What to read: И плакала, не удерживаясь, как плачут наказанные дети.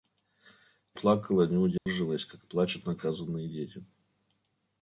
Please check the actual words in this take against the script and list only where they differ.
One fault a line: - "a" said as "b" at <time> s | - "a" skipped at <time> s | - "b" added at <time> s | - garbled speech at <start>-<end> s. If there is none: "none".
none